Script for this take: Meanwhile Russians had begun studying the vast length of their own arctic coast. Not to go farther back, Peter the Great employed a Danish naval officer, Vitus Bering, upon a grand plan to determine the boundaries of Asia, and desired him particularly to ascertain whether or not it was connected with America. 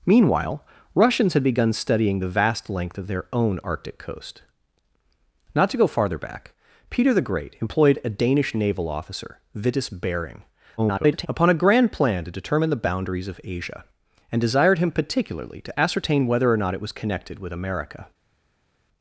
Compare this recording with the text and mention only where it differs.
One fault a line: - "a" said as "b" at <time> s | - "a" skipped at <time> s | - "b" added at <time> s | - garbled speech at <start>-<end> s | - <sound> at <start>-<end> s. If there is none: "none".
- garbled speech at 10.8-11.3 s